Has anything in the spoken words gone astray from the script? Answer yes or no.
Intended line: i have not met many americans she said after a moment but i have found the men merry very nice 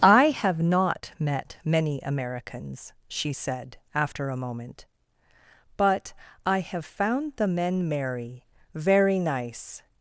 no